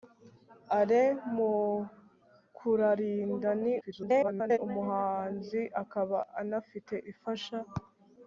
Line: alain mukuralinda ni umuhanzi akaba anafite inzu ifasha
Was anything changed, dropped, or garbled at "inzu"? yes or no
yes